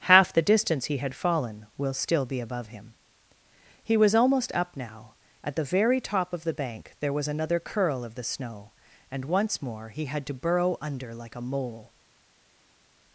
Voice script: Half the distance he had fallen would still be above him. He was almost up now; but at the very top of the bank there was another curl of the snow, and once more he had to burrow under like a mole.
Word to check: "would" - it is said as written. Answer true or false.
false